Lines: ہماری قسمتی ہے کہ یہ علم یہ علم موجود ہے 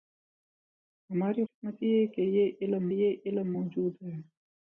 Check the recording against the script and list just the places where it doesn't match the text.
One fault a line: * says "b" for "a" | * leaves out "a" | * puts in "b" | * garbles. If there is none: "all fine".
all fine